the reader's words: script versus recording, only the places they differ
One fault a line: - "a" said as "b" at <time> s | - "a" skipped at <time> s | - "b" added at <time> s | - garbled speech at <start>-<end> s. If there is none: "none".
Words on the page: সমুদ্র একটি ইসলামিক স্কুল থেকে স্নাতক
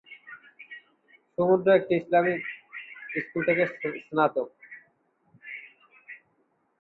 none